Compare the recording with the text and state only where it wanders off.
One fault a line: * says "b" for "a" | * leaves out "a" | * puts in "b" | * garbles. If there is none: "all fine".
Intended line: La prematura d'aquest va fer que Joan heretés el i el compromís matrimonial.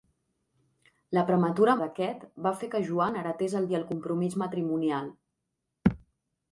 all fine